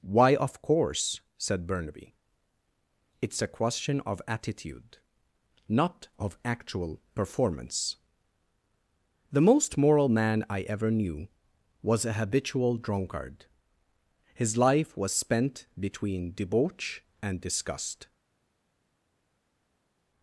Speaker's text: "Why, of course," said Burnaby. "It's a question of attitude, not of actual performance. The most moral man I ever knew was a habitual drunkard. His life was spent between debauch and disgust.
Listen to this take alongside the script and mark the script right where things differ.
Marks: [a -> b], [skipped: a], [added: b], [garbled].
"Why, of course," said Burnaby. "It's a question of attitude, not of actual performance. The most moral man I ever knew was a habitual drunkard. His life was spent between debauch and disgust.